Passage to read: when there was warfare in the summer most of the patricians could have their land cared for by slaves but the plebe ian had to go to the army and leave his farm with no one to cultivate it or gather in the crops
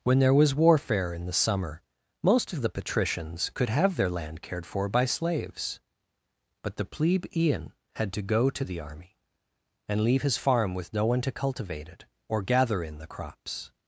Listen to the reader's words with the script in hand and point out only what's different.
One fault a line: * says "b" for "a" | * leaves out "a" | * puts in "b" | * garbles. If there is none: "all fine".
all fine